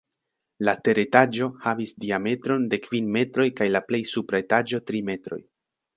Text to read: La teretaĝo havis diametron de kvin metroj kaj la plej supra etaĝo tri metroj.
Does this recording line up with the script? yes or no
yes